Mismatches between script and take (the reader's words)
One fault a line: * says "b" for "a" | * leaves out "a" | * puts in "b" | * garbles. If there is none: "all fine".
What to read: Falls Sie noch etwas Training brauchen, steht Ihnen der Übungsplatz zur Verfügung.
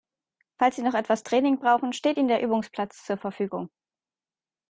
all fine